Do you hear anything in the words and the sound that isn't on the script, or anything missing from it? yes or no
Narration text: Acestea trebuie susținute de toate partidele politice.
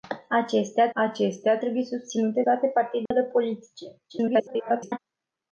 yes